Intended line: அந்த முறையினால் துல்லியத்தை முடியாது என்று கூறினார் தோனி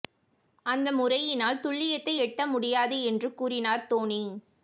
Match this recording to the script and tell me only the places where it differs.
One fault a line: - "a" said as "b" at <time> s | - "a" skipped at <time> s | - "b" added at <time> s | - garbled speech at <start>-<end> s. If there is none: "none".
- "எட்ட" added at 2.2 s